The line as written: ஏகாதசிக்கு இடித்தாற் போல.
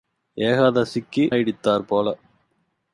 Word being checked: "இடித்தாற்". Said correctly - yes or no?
yes